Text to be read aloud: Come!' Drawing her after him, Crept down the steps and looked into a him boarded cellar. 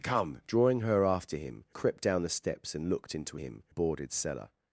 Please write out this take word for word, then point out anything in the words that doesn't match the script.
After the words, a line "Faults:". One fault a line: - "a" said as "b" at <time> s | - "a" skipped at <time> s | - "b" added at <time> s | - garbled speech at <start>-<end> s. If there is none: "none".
Come!' Drawing her after him, Crept down the steps and looked into a him boarded cellar.
Faults:
none